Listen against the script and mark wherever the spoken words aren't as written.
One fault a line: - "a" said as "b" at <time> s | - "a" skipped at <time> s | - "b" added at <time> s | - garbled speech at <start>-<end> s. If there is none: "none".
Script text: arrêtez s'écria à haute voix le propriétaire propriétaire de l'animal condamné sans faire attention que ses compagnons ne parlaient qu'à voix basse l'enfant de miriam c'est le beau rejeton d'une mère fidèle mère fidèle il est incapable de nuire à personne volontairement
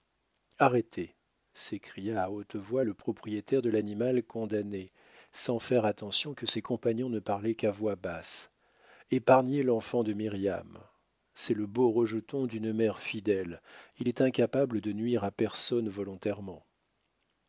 - "propriétaire" skipped at 3.6 s
- "épargnez" added at 9.1 s
- "mère fidèle" skipped at 13.6 s